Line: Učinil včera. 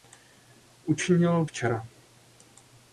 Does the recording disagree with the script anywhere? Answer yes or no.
no